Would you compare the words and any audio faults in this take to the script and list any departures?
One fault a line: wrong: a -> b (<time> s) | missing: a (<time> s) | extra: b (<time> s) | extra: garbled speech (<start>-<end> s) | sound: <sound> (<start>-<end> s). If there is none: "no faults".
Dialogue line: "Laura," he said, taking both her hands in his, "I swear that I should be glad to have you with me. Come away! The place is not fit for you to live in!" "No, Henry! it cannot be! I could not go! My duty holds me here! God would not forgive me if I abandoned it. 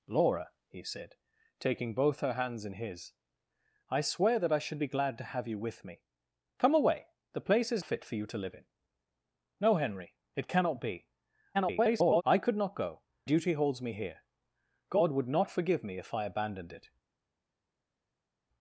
missing: not (7.8 s)
extra: garbled speech (11.5-12.2 s)
missing: My (13.0 s)